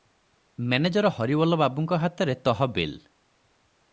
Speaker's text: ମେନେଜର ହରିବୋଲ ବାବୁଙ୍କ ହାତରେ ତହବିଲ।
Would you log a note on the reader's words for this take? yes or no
no